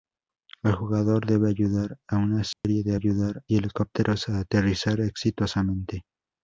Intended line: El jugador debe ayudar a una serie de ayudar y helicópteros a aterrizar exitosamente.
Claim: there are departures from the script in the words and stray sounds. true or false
true